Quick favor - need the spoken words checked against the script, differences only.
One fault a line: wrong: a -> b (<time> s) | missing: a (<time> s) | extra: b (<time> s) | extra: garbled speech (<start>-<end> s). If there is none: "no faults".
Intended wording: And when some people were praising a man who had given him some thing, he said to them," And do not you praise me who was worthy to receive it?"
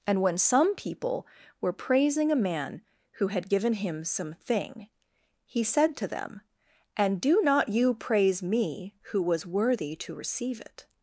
no faults